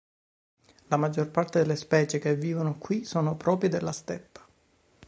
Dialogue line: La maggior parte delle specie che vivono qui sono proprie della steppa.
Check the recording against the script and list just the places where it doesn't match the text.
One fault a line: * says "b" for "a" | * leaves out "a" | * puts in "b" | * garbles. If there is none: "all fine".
all fine